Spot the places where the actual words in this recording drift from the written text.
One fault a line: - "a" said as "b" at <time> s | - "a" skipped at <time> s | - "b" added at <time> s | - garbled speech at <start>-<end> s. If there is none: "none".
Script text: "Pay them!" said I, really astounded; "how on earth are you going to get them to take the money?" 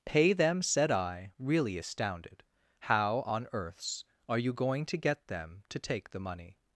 - "earth" said as "earths" at 3.5 s